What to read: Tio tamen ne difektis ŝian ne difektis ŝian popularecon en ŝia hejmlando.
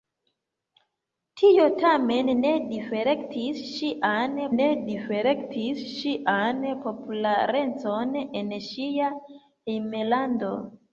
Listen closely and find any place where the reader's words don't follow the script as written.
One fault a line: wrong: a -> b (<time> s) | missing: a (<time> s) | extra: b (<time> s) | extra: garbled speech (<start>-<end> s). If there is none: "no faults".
no faults